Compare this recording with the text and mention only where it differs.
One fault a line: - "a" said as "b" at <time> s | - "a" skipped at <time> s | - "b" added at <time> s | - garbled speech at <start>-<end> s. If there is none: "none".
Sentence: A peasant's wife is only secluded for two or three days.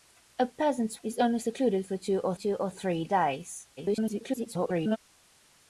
- "wife" skipped at 1.0 s
- "two or" added at 2.3 s
- garbled speech at 3.8-5.0 s